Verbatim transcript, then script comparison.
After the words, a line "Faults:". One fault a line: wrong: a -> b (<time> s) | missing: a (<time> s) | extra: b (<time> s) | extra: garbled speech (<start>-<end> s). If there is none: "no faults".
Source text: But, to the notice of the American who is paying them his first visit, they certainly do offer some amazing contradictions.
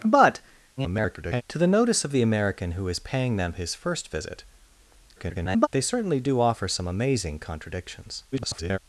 But, [garbled] to the notice of the American who is paying them his first visit, [garbled] they certainly do offer some amazing contradictions. [garbled]
Faults:
extra: garbled speech (0.8-1.4 s)
extra: garbled speech (5.2-5.7 s)
extra: garbled speech (8.3-8.8 s)